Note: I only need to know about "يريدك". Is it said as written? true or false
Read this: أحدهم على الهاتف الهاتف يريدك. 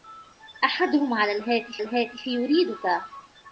true